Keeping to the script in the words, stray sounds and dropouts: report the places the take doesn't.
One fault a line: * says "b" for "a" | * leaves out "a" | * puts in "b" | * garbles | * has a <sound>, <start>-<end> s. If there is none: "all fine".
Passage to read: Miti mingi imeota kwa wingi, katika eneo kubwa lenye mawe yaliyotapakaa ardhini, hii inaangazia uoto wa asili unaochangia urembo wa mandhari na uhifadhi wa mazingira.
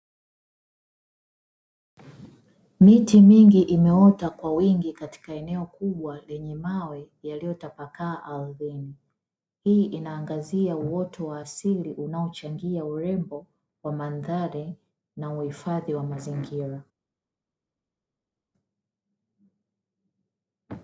all fine